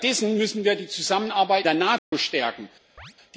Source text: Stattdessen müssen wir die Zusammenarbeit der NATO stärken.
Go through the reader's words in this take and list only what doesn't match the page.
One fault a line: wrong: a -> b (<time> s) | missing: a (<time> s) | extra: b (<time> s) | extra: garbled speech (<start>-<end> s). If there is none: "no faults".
no faults